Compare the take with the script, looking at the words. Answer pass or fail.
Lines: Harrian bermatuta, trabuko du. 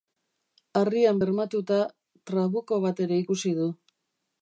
fail